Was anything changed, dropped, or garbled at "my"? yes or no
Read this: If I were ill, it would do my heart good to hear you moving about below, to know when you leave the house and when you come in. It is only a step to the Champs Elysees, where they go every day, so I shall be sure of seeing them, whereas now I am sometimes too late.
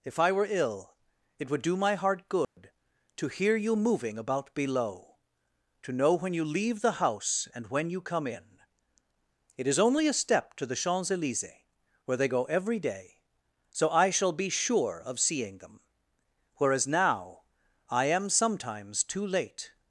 no